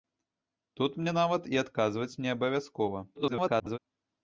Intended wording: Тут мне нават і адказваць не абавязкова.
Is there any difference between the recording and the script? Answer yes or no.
yes